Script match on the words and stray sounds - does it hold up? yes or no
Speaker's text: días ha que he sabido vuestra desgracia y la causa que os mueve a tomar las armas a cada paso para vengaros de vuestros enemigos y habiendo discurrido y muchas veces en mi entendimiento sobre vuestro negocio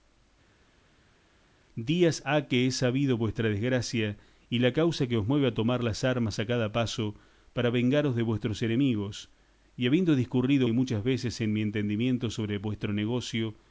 yes